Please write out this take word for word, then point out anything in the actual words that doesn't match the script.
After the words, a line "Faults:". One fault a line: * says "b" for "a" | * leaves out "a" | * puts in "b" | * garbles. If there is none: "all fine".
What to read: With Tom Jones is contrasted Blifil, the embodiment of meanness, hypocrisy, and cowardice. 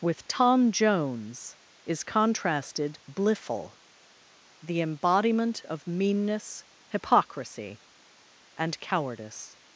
With Tom Jones is contrasted Blifil, the embodiment of meanness, hypocrisy, and cowardice.
Faults:
all fine